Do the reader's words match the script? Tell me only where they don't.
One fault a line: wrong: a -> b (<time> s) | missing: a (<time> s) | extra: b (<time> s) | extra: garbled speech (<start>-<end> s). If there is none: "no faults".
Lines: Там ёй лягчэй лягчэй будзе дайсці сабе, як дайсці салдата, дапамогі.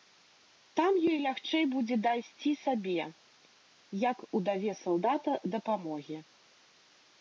missing: лягчэй (1.6 s)
wrong: дайсці -> удаве (4.4 s)